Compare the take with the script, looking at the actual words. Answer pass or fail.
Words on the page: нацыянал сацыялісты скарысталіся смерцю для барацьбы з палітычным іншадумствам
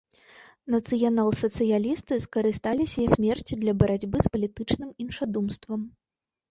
pass